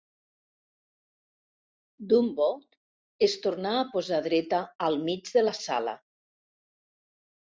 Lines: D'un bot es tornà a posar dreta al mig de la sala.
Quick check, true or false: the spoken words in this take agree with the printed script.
true